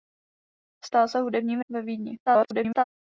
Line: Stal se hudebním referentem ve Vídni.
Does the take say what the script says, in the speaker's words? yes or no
no